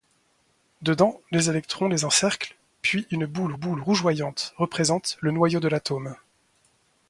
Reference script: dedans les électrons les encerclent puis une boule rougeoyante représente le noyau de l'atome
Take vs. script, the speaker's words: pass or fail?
fail